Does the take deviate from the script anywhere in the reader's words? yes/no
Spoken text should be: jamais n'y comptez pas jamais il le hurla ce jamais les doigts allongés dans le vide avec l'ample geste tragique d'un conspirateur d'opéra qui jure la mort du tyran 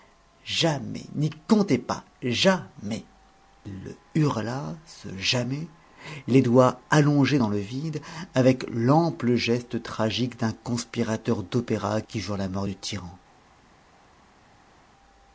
no